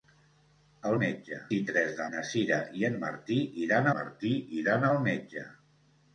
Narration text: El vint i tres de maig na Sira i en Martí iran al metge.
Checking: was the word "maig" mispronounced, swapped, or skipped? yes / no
yes